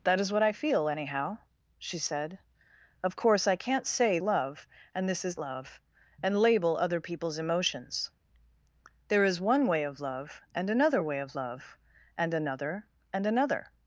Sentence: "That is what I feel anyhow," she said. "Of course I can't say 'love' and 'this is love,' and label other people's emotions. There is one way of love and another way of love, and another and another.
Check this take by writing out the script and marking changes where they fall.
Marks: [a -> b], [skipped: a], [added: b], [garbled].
"That is what I feel anyhow," she said. "Of course I can't say 'love' and 'this is love,' and label other people's emotions. There is one way of love and another way of love, and another and another.